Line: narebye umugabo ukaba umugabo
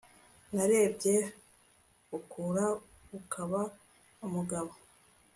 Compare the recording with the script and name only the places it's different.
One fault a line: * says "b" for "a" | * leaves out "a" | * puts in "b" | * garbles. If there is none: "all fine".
* says "ukura" for "umugabo"